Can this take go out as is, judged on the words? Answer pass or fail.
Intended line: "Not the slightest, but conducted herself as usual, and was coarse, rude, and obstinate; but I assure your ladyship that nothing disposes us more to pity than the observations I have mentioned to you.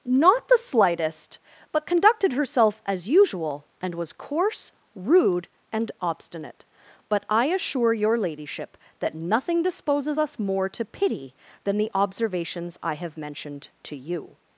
pass